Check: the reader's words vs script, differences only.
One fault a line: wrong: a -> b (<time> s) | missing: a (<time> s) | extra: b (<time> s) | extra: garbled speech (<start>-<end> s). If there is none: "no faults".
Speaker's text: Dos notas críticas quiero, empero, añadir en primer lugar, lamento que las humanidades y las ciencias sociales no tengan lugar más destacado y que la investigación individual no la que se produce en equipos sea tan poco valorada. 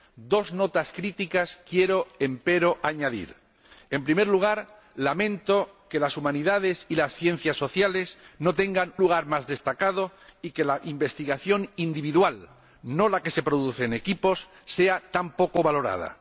no faults